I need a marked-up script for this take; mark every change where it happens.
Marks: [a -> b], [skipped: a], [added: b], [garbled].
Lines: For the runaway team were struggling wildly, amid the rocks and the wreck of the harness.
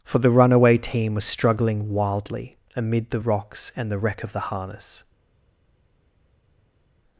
For the runaway team [were -> was] struggling wildly, amid the rocks and the wreck of the harness.